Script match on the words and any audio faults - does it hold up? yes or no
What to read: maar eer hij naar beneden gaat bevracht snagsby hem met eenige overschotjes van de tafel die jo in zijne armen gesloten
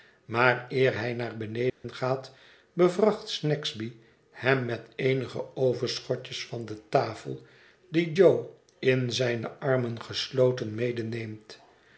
no